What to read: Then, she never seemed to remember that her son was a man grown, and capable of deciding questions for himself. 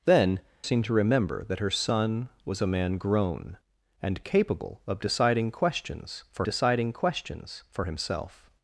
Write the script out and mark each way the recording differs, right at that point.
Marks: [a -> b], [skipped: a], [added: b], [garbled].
Then, [skipped: she never] seemed to remember that her son was a man grown, and capable of deciding questions for [added: deciding questions for] himself.